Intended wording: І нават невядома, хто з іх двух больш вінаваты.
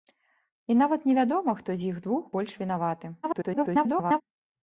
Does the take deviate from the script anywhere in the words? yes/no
yes